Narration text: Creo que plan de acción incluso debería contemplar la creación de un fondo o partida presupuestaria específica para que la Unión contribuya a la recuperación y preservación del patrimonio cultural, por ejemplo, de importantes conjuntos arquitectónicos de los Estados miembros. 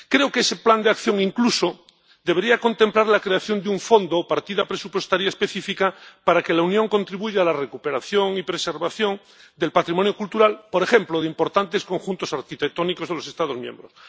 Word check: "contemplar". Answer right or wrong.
right